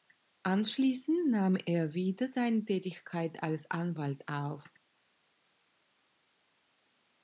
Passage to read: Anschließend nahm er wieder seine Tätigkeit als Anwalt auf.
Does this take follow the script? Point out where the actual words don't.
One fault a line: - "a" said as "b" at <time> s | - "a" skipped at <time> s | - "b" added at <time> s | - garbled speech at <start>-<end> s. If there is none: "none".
none